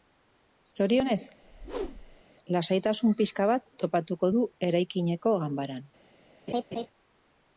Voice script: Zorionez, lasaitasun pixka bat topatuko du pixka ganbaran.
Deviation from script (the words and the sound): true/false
true